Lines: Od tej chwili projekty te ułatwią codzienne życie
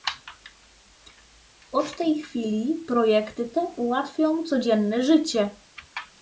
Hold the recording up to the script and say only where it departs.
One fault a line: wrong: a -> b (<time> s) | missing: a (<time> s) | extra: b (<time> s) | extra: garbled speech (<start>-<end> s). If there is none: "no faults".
no faults